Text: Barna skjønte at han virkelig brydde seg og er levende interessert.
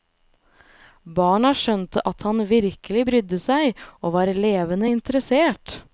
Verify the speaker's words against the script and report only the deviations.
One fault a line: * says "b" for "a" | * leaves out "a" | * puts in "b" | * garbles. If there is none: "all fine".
* says "var" for "er"